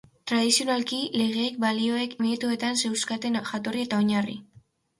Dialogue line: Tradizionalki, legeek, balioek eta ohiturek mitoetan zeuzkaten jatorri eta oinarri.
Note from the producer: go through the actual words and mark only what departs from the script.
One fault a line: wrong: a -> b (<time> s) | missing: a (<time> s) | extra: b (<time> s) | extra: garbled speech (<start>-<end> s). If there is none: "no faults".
missing: eta ohiturek (2.1 s)